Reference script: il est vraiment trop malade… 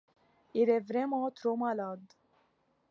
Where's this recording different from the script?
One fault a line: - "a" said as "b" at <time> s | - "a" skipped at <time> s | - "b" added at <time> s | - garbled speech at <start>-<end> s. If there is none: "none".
none